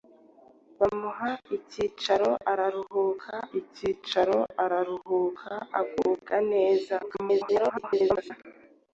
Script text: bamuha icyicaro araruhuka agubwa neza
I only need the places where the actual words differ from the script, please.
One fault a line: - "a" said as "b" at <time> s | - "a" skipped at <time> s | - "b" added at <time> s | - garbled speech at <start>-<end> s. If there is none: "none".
- "icyicaro araruhuka" added at 3.6 s
- garbled speech at 7.0-8.3 s